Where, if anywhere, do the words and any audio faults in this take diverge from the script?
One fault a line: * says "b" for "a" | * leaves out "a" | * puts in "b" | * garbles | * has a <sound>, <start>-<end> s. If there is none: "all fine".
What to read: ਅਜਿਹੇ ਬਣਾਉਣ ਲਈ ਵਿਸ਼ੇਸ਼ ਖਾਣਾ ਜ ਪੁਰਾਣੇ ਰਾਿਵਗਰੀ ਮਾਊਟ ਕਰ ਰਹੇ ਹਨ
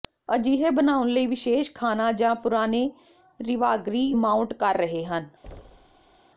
* has a thud, 5.4-6.2 s